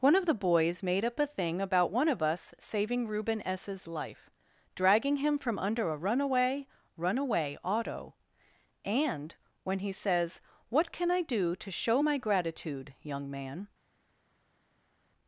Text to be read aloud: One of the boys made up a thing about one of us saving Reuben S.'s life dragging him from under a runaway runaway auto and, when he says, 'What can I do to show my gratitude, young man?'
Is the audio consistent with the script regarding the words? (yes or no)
yes